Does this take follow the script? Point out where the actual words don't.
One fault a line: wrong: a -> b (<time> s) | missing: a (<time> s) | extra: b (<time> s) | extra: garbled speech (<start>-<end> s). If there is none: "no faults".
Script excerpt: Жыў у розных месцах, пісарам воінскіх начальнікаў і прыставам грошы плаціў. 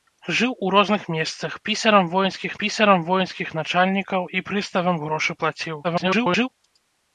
extra: пісарам воінскіх (2.6 s)
extra: garbled speech (5.8-6.5 s)